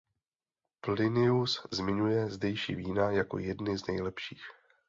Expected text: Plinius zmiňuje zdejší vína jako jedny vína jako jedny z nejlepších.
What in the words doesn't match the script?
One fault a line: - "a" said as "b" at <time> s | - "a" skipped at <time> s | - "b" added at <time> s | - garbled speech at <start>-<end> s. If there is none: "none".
- "vína jako jedny" skipped at 3.8 s